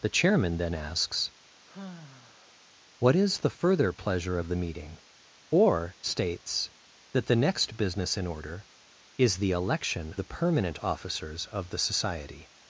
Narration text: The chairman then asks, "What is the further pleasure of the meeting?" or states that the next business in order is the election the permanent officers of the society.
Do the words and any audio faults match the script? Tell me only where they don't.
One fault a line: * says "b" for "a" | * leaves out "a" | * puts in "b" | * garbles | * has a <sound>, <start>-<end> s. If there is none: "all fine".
* has a sigh, 1.7-2.7 s